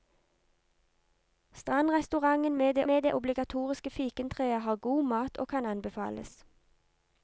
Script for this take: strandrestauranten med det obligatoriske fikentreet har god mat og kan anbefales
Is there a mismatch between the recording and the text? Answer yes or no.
yes